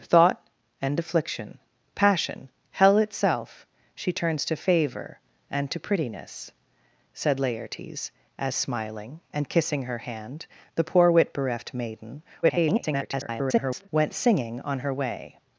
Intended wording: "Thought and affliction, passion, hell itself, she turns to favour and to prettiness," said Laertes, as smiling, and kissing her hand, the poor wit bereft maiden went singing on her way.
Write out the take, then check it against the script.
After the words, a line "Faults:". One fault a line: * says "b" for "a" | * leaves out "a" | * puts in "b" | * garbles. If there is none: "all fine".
"Thought and affliction, passion, hell itself, she turns to favour and to prettiness," said Laertes, as smiling, and kissing her hand, the poor wit bereft maiden [garbled] went singing on her way.
Faults:
* garbles